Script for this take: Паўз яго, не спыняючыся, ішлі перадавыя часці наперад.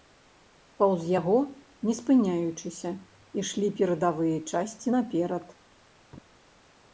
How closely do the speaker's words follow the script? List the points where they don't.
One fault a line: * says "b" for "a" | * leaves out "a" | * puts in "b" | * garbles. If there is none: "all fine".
all fine